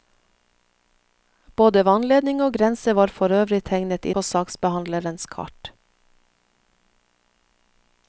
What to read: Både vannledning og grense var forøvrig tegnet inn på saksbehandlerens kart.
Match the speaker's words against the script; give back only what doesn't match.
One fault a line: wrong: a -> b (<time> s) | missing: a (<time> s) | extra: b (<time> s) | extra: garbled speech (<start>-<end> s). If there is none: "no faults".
missing: inn (4.1 s)